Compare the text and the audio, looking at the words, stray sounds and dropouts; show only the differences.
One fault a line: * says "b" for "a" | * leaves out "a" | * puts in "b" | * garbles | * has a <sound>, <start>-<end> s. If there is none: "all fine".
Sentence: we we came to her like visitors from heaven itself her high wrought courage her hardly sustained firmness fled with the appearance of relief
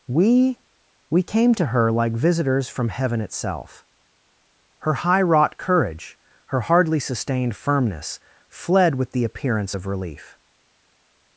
all fine